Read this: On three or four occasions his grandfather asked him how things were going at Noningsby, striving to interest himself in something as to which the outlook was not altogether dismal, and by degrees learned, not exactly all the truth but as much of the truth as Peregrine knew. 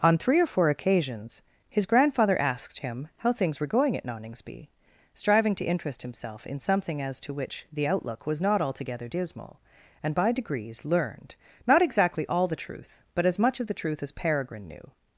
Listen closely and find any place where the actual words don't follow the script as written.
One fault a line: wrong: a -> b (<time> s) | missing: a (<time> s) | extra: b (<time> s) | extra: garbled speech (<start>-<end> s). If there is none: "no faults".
no faults